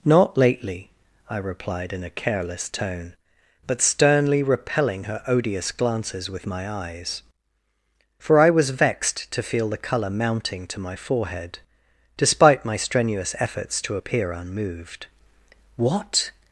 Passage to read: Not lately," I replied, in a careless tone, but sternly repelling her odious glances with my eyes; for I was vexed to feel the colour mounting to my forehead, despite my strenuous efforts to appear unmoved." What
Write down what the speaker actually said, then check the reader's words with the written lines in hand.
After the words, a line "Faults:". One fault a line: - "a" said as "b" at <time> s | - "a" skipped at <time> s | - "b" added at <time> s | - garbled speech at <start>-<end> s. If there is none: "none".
Not lately," I replied, in a careless tone, but sternly repelling her odious glances with my eyes; for I was vexed to feel the colour mounting to my forehead, despite my strenuous efforts to appear unmoved." What
Faults:
none